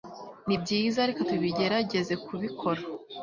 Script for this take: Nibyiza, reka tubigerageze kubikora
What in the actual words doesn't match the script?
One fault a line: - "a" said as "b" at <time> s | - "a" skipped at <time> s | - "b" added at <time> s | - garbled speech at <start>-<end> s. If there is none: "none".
none